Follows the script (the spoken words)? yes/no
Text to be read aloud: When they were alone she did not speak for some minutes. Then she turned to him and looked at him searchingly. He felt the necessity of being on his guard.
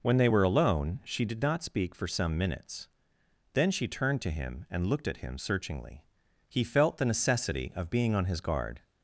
yes